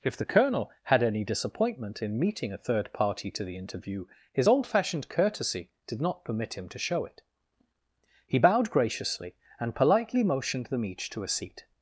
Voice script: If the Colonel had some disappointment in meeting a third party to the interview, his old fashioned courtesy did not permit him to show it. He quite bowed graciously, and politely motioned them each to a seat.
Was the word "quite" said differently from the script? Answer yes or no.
yes